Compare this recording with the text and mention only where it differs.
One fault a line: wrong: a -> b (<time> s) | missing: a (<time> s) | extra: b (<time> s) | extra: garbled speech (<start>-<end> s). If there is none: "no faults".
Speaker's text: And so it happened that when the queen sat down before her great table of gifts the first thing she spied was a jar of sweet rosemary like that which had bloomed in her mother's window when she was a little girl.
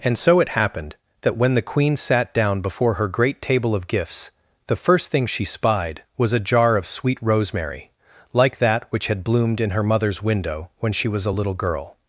no faults